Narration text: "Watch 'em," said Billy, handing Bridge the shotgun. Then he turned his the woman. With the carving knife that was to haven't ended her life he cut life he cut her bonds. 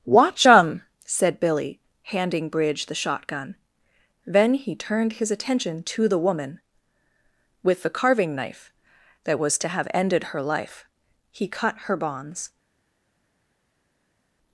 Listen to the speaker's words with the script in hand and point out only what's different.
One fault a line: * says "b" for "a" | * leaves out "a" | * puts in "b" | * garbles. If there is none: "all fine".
* puts in "attention to"
* says "have" for "haven't"
* leaves out "life he cut"